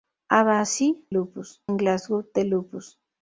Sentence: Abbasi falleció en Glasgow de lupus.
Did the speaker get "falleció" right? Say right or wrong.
wrong